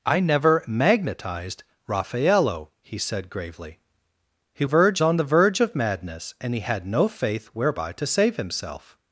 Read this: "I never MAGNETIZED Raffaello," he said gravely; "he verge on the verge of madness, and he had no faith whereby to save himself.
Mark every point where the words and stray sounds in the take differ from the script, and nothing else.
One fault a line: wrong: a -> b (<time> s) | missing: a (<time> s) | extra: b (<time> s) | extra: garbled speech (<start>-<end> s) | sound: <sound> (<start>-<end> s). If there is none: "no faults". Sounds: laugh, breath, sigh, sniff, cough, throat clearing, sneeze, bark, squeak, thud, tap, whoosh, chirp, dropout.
no faults